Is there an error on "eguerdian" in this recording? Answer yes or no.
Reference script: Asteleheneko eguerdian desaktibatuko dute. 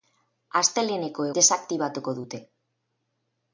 yes